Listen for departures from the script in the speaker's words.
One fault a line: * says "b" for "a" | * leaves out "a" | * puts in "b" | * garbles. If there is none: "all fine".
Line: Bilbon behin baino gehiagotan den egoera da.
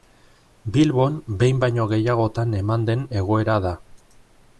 * puts in "eman"